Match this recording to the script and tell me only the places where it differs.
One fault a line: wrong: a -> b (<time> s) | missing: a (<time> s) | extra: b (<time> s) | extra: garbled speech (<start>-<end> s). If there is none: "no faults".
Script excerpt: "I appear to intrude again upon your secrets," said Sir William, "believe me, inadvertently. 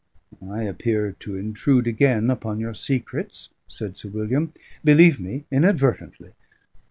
no faults